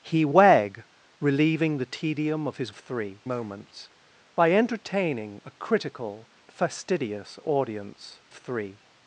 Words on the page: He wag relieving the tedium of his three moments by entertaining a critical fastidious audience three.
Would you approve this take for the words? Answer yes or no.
yes